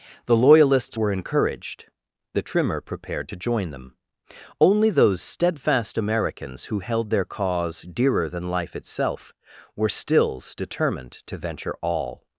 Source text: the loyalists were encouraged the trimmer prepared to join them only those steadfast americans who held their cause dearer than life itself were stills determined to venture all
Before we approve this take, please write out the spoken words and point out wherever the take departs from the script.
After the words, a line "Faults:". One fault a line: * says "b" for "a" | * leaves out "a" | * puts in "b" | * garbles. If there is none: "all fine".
the loyalists were encouraged the trimmer prepared to join them only those steadfast americans who held their cause dearer than life itself were stills determined to venture all
Faults:
all fine